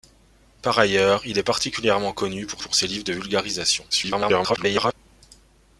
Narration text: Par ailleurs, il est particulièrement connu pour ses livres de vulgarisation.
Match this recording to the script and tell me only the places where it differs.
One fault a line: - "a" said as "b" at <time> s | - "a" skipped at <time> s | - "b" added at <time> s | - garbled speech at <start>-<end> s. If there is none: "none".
- "pour" added at 2.6 s
- garbled speech at 3.9-4.9 s